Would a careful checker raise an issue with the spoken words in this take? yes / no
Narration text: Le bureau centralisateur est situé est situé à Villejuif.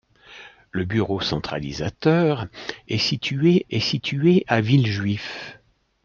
no